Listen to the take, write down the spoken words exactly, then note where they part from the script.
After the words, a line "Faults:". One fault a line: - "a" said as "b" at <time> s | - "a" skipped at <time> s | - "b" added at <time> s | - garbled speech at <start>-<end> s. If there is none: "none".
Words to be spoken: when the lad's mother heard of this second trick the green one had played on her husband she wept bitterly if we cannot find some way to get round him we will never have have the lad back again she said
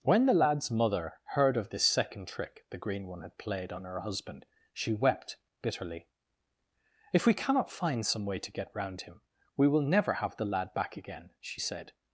when the lad's mother heard of this second trick the green one had played on her husband she wept bitterly if we cannot find some way to get round him we will never have the lad back again she said
Faults:
- "have" skipped at 10.3 s